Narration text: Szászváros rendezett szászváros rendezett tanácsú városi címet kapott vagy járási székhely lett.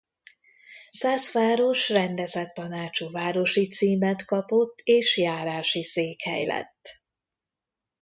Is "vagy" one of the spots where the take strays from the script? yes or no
yes